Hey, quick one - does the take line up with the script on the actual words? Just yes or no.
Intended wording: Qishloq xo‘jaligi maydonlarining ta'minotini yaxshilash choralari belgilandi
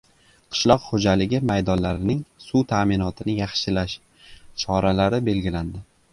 no